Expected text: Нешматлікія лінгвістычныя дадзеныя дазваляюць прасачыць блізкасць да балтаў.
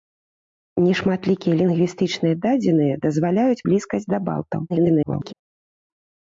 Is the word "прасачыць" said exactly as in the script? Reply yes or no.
no